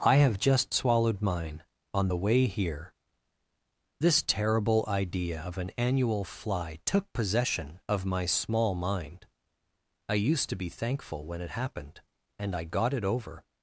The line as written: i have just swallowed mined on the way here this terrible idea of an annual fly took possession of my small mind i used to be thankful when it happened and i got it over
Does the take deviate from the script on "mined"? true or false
true